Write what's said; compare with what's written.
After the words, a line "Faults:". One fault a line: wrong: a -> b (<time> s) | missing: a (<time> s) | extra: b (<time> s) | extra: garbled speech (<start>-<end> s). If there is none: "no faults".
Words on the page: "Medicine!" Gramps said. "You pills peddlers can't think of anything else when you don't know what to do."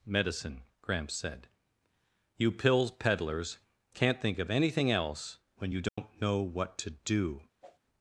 "Medicine!" Gramps said. "You pills peddlers can't think of anything else when you don't know what to do."
Faults:
no faults